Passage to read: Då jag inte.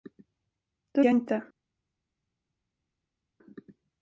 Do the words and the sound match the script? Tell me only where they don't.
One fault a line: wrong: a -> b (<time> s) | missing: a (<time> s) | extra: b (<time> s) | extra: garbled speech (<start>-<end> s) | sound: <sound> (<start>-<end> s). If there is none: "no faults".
no faults